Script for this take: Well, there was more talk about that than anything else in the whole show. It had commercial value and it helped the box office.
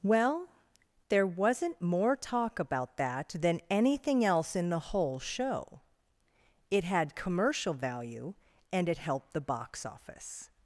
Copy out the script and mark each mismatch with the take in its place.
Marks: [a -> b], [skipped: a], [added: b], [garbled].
Well, there [was -> wasn't] more talk about that than anything else in the whole show. It had commercial value and it helped the box office.